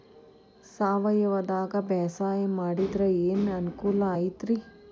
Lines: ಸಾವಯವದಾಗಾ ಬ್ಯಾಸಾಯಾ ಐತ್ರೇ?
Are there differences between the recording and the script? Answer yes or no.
yes